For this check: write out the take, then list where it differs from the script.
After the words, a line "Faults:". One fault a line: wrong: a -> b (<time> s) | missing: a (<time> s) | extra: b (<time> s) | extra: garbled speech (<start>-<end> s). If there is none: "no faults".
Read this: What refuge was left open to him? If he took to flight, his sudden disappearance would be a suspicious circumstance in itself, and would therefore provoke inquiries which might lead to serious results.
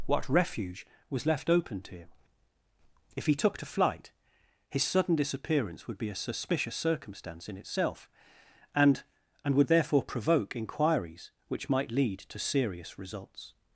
What refuge was left open to him? If he took to flight, his sudden disappearance would be a suspicious circumstance in itself, and and would therefore provoke inquiries which might lead to serious results.
Faults:
extra: and (9.4 s)